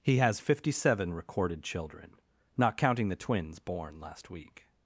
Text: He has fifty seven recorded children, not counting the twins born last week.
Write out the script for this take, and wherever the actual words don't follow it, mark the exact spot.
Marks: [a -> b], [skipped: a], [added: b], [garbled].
He has fifty seven recorded children, not counting the twins born last week.